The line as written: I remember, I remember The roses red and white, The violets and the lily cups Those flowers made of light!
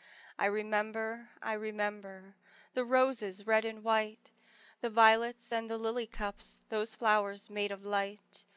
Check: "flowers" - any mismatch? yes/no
no